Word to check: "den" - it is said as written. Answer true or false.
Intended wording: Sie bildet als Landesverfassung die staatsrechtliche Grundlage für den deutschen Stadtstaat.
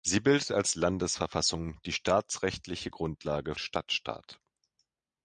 false